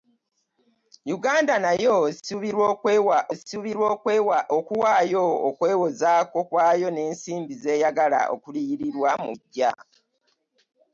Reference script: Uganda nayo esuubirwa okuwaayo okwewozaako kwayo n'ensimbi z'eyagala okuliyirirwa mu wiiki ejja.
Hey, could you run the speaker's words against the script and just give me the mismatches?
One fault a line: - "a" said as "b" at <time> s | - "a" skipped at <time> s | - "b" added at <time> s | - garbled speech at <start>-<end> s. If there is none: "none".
- "esuubirwa" added at 3.3 s
- "wiiki" skipped at 9.3 s